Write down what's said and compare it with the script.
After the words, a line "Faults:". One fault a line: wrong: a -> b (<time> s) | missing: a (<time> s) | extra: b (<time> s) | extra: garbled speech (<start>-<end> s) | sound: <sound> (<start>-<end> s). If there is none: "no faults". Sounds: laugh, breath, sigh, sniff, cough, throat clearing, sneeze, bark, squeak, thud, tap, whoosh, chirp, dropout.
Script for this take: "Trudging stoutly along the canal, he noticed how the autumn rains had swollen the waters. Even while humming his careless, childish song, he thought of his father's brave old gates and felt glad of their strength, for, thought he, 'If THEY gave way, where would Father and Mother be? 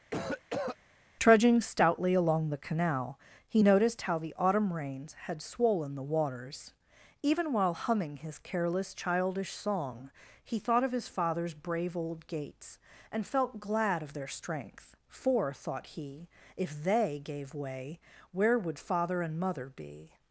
"Trudging stoutly along the canal, he noticed how the autumn rains had swollen the waters. Even while humming his careless, childish song, he thought of his father's brave old gates and felt glad of their strength, for, thought he, 'If THEY gave way, where would Father and Mother be?
Faults:
sound: cough (0.1-0.8 s)